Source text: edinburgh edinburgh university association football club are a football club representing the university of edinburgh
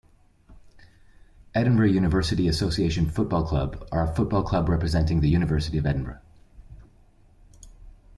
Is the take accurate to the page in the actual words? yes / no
no